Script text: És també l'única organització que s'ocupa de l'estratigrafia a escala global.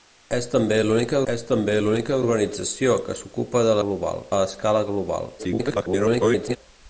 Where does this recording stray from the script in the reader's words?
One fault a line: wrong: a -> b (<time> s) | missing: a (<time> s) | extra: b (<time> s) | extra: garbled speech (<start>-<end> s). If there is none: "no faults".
extra: és també l'única (1.3 s)
wrong: l'estratigrafia -> global (3.8 s)
extra: garbled speech (5.4-6.6 s)